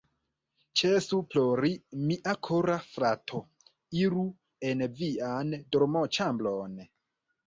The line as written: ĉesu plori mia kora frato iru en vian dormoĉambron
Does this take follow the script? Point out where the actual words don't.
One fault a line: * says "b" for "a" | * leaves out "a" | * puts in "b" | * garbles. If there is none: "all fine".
all fine